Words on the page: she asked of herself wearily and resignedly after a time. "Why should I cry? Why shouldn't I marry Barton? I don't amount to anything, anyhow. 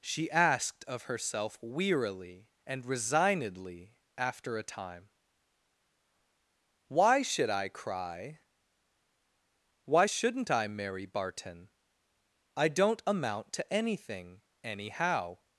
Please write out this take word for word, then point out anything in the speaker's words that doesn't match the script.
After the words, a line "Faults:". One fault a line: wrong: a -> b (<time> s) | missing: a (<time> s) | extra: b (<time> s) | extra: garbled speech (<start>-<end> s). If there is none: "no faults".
she asked of herself wearily and resignedly after a time. "Why should I cry? Why shouldn't I marry Barton? I don't amount to anything, anyhow.
Faults:
no faults